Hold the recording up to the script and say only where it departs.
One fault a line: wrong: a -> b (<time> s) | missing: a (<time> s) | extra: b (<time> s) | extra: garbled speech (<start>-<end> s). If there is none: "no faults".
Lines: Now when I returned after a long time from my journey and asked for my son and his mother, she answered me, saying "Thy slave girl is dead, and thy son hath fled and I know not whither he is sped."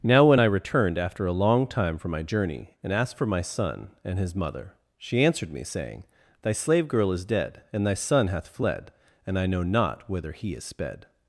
no faults